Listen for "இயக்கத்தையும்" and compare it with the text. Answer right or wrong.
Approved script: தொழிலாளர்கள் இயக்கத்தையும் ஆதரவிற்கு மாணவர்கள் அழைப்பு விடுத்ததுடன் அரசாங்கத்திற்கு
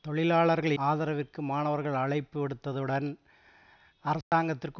wrong